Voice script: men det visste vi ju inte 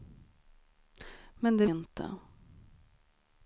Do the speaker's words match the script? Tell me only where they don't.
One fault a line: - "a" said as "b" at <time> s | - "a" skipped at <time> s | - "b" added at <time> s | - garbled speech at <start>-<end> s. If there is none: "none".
- "visste vi ju" skipped at 1.6 s